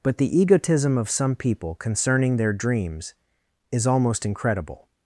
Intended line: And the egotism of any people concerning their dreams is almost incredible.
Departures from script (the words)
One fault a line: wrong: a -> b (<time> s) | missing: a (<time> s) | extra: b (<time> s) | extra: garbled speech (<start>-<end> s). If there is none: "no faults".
wrong: And -> But (0.0 s)
wrong: any -> some (1.1 s)